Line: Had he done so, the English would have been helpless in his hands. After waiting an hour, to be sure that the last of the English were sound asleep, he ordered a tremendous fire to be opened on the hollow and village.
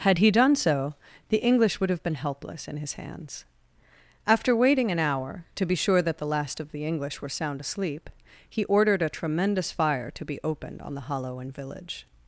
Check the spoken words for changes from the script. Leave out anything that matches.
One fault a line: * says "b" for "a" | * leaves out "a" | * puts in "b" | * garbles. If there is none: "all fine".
all fine